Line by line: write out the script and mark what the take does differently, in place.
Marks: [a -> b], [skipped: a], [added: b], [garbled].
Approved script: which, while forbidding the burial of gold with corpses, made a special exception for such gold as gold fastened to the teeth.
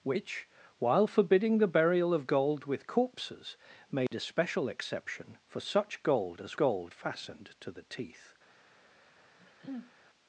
which, while forbidding the burial of gold with corpses, made a special exception for such gold as gold fastened to the teeth.